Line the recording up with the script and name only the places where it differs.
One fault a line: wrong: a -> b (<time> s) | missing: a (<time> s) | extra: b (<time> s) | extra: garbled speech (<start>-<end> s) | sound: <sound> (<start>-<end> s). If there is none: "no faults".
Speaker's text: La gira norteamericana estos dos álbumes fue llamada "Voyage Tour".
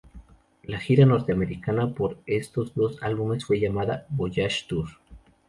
extra: por (1.9 s)